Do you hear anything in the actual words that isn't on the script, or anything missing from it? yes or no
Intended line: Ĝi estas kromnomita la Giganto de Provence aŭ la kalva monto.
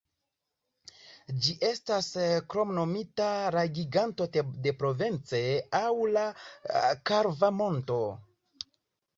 no